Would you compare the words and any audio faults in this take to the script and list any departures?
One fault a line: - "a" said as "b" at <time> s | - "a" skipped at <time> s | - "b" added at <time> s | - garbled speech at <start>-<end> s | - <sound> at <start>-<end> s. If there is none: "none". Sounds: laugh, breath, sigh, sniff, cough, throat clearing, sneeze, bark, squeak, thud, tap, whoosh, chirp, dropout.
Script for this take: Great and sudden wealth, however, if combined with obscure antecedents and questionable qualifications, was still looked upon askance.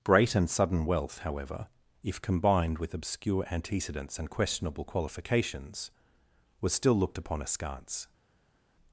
none